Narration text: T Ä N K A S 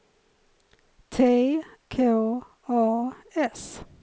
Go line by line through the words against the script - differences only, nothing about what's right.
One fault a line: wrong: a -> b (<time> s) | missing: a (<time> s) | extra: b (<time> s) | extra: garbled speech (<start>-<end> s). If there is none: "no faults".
missing: Ä N (1.2 s)